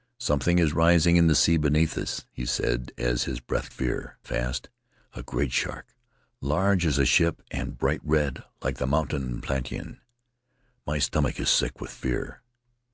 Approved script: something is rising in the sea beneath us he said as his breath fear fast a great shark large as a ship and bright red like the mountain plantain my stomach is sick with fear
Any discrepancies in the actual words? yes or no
no